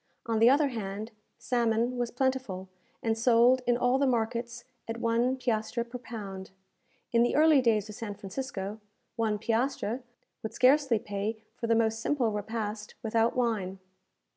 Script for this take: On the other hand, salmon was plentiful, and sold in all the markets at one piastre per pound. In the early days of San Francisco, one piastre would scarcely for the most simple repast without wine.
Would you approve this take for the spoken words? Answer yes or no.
no